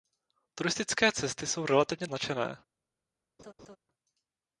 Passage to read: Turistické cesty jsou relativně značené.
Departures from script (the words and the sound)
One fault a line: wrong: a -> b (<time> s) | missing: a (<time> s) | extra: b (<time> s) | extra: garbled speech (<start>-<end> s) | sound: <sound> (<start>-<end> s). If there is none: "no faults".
sound: laugh (3.4-3.8 s)